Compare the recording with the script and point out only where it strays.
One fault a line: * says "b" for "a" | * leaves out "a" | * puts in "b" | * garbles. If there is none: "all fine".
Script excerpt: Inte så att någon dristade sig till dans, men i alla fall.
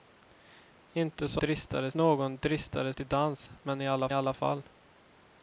* says "dristade" for "att"
* leaves out "sig"
* puts in "alla"